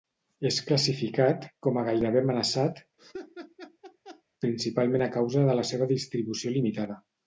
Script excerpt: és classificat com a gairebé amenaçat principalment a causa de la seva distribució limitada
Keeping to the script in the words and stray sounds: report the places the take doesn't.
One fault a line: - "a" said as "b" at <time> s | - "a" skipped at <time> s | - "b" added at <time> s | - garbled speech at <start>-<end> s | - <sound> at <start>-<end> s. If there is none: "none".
- laugh at 3.0-4.2 s